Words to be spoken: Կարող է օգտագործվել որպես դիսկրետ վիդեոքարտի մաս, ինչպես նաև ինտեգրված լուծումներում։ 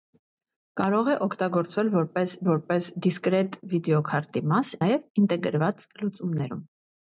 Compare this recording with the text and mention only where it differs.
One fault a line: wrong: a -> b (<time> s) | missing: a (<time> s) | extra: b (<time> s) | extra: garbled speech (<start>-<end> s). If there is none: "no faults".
extra: որպես (2.5 s)
missing: ինչպես (4.7 s)